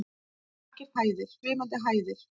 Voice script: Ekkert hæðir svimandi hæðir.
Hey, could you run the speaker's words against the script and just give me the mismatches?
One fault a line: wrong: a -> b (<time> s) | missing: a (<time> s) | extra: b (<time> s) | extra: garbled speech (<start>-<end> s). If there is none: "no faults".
no faults